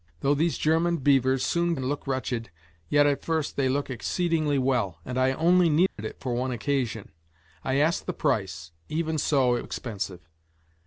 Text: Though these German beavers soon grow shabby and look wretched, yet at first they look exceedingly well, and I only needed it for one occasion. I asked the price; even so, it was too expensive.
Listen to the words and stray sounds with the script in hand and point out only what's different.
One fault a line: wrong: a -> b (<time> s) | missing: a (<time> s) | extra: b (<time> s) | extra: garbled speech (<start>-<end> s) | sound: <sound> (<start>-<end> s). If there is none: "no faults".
missing: grow shabby (1.8 s)
sound: dropout (5.9-6.0 s)
missing: was too (9.7 s)